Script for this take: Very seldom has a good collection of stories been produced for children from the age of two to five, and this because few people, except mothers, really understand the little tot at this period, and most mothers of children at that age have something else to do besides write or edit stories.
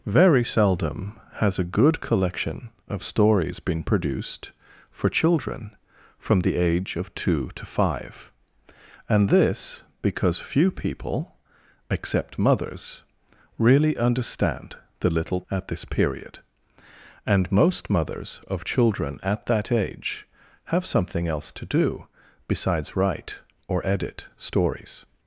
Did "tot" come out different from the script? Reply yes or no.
yes